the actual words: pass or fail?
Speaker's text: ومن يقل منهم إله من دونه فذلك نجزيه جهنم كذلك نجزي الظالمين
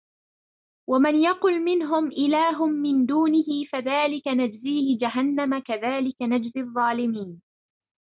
pass